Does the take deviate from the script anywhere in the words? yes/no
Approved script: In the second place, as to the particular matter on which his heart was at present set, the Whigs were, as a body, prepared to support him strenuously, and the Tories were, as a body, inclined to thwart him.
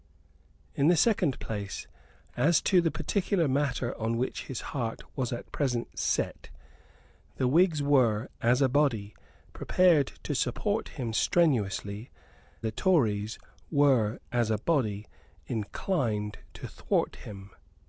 yes